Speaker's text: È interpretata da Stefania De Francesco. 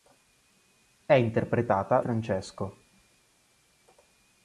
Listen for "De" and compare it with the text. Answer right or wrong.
wrong